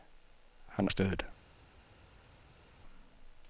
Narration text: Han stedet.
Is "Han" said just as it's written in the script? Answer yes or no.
yes